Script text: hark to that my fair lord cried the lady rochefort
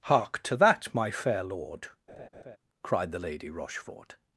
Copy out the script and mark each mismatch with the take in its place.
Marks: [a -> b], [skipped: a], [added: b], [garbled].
hark to that my fair lord cried the lady rochefort